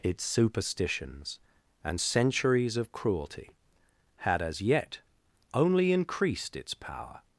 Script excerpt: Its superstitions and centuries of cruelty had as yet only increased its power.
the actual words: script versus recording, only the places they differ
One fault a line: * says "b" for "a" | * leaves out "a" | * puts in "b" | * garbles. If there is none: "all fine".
all fine